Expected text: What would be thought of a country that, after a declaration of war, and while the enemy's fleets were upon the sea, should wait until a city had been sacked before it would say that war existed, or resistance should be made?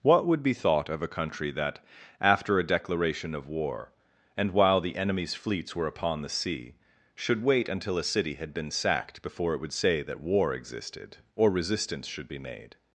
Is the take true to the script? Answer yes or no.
yes